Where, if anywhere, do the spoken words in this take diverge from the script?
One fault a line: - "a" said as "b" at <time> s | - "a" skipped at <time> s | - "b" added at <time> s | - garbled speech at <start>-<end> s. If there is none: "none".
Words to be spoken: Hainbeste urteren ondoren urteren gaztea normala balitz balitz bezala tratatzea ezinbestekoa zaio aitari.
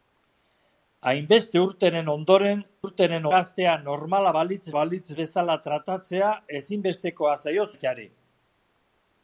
none